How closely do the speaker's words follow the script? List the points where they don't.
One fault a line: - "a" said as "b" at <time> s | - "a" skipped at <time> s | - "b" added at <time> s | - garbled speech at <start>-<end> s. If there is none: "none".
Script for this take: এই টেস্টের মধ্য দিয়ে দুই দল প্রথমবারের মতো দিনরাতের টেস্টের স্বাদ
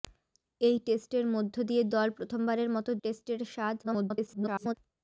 - "দুই" skipped at 1.8 s
- "দিনরাতের" skipped at 2.9 s
- garbled speech at 3.8-4.7 s